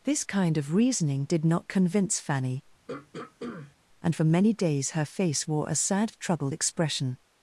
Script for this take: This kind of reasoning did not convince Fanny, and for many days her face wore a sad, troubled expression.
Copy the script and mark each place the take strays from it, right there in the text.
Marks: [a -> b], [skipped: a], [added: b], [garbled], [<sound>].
This kind of reasoning did not convince Fanny, [throat clearing] and for many days her face wore a sad, troubled expression.